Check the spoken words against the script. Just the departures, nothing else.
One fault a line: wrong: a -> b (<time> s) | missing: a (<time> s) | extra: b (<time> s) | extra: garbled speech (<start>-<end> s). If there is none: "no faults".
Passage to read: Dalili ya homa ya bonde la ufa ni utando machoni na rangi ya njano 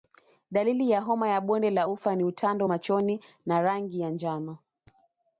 no faults